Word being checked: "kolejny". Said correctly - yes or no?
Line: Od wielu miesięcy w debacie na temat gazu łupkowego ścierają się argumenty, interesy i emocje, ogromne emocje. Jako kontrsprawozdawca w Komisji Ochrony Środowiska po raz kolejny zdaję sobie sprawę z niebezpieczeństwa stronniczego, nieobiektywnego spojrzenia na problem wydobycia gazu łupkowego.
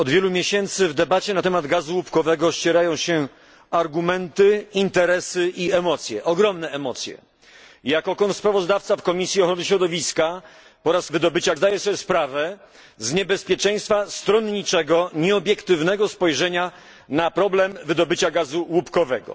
no